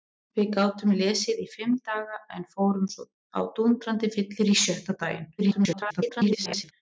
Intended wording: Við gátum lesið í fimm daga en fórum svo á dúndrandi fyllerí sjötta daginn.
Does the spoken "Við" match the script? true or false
true